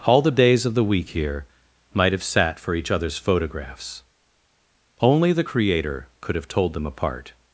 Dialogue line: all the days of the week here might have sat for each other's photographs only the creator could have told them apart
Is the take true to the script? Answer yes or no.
yes